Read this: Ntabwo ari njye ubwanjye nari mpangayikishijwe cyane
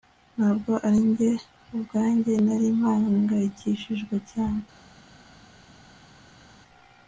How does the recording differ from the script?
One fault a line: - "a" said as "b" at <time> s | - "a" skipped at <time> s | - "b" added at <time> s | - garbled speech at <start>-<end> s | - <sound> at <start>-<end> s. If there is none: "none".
none